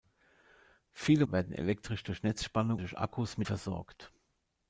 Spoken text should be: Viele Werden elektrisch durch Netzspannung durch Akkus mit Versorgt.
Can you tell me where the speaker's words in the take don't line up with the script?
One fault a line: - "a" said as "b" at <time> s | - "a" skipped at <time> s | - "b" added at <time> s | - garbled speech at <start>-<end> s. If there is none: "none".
none